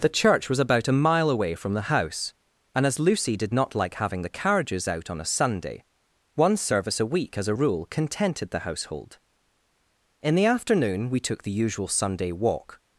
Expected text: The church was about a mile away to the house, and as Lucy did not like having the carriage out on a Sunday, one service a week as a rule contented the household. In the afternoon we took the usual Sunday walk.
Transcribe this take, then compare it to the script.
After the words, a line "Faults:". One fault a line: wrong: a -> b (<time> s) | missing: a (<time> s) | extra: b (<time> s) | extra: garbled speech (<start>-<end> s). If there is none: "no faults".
The church was about a mile away from the house, and as Lucy did not like having the carriages out on a Sunday, one service a week as a rule contented the household. In the afternoon we took the usual Sunday walk.
Faults:
wrong: to -> from (1.5 s)
wrong: carriage -> carriages (4.3 s)